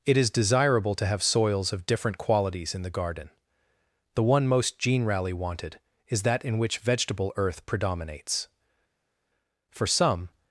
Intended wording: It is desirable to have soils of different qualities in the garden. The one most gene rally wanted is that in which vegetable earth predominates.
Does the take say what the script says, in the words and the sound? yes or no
no